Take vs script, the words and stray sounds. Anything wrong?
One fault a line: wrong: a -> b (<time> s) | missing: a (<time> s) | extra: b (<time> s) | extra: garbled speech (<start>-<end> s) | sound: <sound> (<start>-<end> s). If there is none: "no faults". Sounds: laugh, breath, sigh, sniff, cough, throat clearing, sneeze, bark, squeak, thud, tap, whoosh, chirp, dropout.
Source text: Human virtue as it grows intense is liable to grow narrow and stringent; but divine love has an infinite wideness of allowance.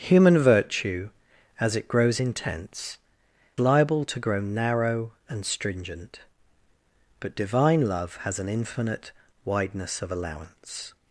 missing: is (3.0 s)